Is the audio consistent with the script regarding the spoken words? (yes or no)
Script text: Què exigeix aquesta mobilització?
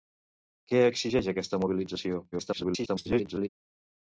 no